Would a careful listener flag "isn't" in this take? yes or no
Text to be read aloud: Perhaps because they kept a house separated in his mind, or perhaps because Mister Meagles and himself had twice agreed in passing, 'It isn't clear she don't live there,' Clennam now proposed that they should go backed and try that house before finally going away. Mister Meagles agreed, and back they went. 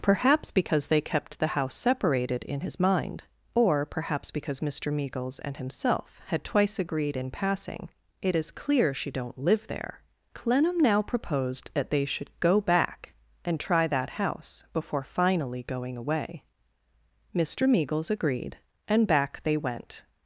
yes